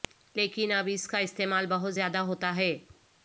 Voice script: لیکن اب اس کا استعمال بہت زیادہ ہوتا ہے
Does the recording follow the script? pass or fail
pass